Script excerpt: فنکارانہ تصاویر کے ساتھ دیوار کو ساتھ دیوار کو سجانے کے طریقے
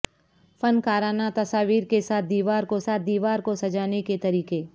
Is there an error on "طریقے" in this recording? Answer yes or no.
no